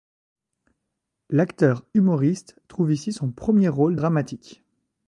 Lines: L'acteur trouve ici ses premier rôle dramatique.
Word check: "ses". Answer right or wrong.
wrong